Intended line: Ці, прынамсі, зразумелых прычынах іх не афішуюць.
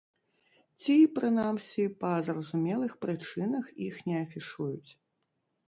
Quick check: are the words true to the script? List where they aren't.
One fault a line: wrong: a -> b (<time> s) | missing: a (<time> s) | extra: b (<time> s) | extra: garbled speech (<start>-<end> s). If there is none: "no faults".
extra: па (2.0 s)